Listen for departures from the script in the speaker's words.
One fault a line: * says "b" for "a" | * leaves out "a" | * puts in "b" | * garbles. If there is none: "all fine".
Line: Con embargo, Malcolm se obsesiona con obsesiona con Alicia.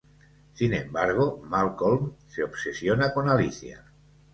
* says "Sin" for "Con"
* leaves out "obsesiona con"